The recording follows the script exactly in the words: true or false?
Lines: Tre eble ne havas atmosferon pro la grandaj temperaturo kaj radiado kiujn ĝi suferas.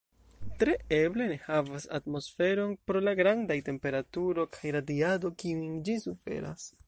true